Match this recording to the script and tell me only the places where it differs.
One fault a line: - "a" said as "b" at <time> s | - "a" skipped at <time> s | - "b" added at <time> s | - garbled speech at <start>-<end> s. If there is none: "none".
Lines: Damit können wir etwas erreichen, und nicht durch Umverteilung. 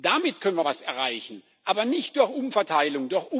- "und" said as "aber" at 1.6 s